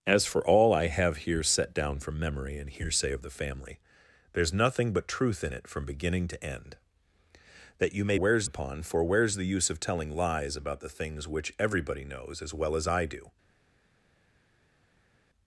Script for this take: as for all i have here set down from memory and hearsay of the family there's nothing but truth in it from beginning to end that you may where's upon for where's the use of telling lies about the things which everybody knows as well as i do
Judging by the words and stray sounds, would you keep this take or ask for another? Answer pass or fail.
pass